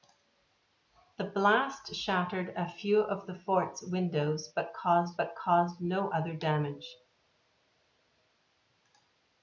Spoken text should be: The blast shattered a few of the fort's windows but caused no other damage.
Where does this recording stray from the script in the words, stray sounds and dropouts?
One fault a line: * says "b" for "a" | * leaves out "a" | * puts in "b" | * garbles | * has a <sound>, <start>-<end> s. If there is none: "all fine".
* puts in "but caused"